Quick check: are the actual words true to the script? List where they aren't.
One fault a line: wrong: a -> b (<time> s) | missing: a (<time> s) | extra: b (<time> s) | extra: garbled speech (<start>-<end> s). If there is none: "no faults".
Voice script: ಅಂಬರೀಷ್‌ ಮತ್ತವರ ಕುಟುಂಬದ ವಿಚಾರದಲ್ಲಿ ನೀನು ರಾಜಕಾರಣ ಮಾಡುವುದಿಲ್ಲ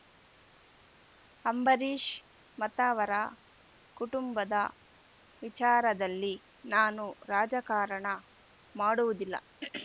wrong: ನೀನು -> ನಾನು (6.7 s)